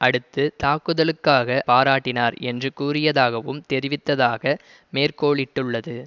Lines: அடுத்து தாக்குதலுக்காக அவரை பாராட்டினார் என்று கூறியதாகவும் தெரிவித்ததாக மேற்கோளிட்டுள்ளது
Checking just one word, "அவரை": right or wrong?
wrong